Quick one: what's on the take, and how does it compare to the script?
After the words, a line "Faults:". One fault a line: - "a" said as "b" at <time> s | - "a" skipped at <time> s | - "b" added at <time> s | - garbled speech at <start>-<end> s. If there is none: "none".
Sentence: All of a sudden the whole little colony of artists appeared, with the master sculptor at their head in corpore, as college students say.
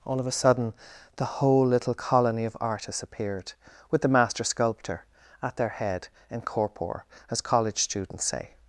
All of a sudden the whole little colony of artists appeared, with the master sculptor at their head in corpore, as college students say.
Faults:
none